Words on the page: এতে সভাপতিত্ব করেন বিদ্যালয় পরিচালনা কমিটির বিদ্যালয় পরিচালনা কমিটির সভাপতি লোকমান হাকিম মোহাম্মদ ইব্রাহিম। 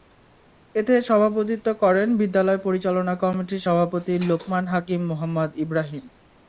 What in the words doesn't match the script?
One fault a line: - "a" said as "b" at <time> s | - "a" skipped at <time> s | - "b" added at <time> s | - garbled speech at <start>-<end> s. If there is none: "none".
- "বিদ্যালয় পরিচালনা কমিটির" skipped at 3.6 s